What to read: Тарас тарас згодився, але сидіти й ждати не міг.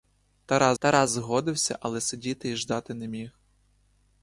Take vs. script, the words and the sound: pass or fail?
pass